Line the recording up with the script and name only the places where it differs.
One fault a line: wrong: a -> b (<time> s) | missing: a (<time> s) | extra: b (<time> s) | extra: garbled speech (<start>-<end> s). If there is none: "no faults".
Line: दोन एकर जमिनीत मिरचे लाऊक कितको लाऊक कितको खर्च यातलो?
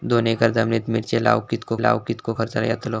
no faults